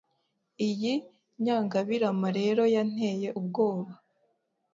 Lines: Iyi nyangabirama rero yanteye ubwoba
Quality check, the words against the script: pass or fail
pass